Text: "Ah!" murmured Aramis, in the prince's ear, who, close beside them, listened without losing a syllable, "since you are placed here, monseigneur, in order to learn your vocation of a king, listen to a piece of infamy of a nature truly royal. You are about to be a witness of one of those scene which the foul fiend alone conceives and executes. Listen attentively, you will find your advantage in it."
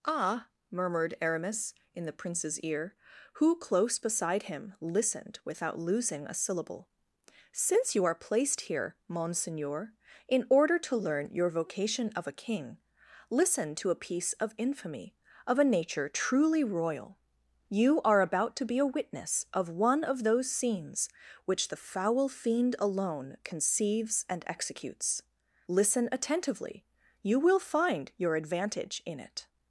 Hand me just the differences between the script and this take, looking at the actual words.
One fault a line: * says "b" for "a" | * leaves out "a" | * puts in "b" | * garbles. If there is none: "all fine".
* says "him" for "them"
* says "scenes" for "scene"